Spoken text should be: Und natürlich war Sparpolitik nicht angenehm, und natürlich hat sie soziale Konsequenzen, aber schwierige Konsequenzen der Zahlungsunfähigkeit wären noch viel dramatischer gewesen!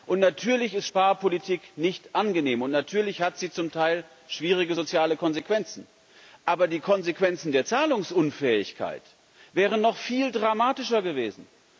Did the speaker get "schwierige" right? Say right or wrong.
wrong